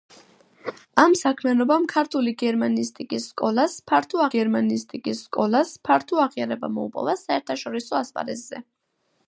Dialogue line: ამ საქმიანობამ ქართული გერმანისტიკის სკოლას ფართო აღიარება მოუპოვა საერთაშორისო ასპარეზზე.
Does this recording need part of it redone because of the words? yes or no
yes